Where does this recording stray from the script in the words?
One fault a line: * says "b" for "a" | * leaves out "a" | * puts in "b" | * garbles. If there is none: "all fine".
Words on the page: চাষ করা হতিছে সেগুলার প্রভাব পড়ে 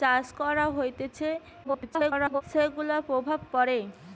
* garbles